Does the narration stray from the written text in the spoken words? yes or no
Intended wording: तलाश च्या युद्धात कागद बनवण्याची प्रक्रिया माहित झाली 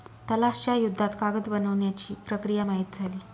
no